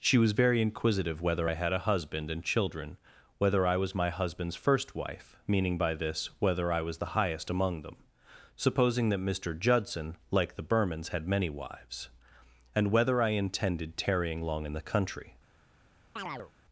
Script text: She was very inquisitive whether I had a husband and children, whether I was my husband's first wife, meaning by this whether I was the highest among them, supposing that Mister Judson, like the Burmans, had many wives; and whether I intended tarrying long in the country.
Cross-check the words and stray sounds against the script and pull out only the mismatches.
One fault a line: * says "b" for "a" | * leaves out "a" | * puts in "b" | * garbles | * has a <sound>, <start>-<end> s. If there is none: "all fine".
* has a chirp, 16.2-16.5 s